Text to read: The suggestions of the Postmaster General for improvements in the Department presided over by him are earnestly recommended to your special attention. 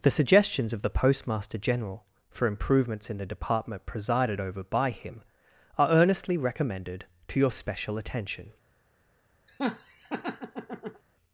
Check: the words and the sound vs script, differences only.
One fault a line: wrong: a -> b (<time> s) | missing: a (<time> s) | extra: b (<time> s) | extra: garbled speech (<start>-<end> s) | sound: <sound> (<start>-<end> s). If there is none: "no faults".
sound: laugh (9.5-11.0 s)